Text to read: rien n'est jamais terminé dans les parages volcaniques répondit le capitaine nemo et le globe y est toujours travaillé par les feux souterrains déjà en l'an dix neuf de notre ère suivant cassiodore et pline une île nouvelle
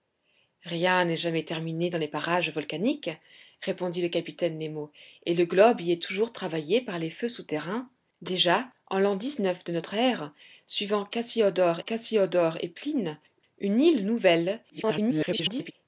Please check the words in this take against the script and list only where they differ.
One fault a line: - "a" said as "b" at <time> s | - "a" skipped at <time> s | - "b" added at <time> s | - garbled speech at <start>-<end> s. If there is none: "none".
- "cassiodore" added at 11.8 s
- garbled speech at 14.7-15.7 s